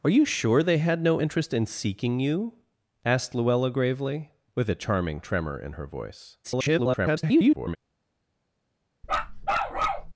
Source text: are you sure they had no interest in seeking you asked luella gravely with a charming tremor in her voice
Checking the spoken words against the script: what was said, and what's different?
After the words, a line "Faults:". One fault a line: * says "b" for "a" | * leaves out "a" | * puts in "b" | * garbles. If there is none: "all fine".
are you sure they had no interest in seeking you asked luella gravely with a charming tremor in her voice [garbled]
Faults:
* garbles